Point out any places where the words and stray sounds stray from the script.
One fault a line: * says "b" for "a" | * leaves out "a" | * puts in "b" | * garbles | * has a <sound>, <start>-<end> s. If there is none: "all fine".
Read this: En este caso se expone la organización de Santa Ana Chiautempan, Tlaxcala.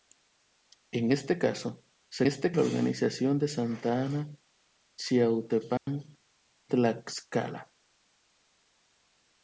* says "este" for "expone"
* has a dropout, 5.8-5.9 s